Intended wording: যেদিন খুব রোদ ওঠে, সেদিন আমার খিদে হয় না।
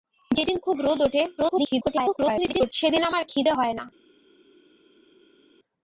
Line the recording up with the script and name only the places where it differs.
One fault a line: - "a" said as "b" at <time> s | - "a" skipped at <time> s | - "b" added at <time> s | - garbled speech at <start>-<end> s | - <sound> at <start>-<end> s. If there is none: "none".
- garbled speech at 1.4-2.7 s